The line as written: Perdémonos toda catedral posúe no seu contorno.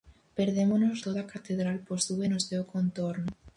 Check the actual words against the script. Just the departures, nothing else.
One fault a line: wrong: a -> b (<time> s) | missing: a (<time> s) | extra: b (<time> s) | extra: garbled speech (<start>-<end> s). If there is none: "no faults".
no faults